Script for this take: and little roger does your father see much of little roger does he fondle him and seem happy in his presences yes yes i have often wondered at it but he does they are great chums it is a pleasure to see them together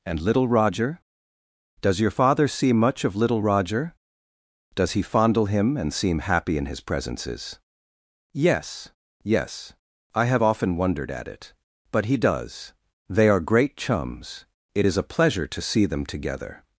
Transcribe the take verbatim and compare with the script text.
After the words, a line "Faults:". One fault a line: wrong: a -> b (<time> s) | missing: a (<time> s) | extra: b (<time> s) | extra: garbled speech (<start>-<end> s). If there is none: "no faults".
and little roger does your father see much of little roger does he fondle him and seem happy in his presences yes yes i have often wondered at it but he does they are great chums it is a pleasure to see them together
Faults:
no faults